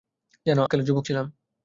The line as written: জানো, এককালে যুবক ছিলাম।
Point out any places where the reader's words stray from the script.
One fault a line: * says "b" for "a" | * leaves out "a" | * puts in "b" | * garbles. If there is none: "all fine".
all fine